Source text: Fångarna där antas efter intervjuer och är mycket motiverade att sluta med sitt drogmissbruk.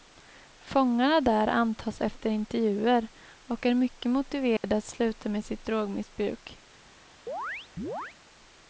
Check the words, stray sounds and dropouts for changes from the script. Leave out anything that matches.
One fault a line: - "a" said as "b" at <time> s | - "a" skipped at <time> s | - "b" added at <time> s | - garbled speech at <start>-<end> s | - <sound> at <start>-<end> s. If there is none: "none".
- dropout at 4.6-4.6 s
- chirp at 7.3-8.2 s